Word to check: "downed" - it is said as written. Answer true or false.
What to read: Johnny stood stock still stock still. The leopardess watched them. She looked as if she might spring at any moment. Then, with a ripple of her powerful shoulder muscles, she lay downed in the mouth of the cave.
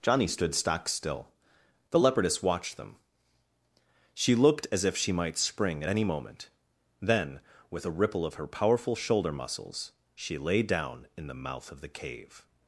false